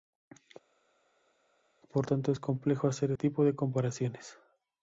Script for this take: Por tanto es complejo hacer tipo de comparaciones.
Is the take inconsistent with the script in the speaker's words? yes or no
no